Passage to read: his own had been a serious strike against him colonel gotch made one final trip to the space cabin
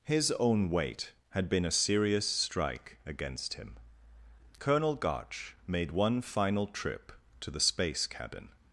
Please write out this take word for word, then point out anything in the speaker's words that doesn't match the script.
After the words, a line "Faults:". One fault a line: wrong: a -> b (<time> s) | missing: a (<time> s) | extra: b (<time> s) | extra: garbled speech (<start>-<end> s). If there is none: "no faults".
his own weight had been a serious strike against him colonel gotch made one final trip to the space cabin
Faults:
extra: weight (0.7 s)